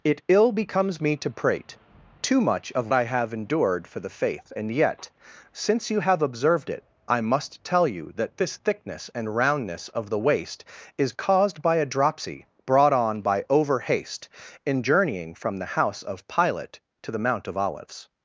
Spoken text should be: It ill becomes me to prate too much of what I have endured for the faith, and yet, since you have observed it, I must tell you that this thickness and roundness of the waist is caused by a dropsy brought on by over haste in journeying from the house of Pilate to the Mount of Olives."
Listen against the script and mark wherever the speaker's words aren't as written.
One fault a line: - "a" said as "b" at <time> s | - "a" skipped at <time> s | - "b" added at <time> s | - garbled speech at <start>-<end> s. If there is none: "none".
- "what" skipped at 2.9 s